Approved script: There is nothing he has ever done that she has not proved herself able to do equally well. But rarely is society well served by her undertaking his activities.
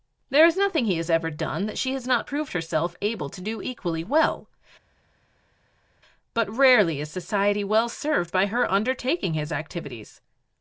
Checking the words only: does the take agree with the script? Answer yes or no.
yes